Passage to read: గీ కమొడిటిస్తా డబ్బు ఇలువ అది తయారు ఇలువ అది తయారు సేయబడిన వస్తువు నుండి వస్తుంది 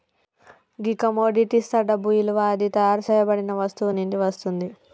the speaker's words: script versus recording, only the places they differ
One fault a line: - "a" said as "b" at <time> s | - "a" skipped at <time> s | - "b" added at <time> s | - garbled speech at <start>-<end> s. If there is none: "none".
- "ఇలువ అది తయారు" skipped at 3.0 s